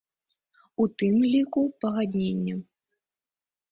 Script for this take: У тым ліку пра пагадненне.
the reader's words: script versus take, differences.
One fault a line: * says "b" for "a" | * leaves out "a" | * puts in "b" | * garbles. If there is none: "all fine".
* leaves out "пра"